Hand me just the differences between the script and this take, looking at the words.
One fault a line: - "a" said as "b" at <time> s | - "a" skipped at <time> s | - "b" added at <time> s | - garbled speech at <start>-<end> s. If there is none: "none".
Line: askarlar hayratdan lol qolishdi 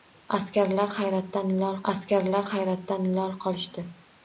- "askarlar hayratdan lol" added at 1.9 s